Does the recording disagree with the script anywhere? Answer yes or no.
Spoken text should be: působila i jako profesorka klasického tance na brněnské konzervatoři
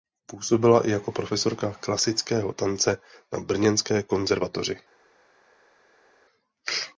no